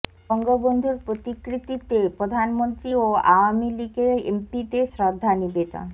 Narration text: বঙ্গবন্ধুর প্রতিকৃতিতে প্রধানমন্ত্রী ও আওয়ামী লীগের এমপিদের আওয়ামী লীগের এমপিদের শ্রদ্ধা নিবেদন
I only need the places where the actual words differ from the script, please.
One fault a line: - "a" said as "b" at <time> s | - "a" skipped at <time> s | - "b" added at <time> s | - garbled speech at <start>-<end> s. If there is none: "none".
- "আওয়ামী লীগের এমপিদের" skipped at 4.9 s